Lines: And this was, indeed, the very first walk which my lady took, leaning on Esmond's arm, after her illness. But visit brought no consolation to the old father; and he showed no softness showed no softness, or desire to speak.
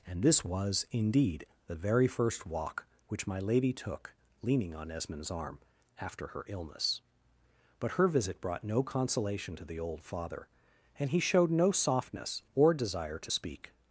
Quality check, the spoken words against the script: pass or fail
fail